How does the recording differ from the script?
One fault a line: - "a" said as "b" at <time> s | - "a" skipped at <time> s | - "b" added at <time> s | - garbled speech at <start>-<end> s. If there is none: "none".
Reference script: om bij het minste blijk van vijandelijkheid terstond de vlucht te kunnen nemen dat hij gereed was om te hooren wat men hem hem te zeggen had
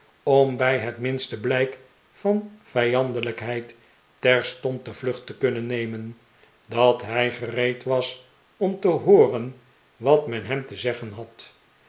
- "hem" skipped at 10.7 s